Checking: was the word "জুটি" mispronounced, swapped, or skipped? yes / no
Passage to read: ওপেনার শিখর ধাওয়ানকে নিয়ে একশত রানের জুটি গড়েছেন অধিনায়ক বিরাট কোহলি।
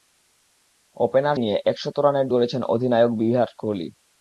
yes